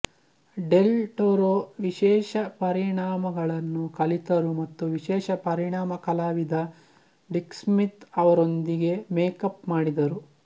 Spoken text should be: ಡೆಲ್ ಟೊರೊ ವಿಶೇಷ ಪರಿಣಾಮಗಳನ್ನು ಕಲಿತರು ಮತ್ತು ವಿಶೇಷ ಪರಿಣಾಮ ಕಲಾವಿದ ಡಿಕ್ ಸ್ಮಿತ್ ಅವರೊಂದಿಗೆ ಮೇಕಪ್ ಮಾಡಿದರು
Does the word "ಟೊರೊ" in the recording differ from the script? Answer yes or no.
no